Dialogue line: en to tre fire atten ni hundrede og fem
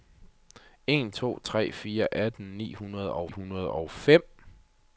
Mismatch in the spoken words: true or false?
true